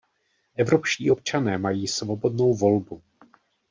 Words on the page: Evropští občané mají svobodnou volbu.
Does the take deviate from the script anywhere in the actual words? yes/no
no